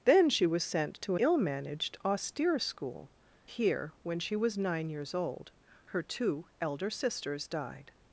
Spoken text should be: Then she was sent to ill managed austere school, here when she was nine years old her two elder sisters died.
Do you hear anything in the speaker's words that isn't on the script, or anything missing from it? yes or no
no